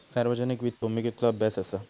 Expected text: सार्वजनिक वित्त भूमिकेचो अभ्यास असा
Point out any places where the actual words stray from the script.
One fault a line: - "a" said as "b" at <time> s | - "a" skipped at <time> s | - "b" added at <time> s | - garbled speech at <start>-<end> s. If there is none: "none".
none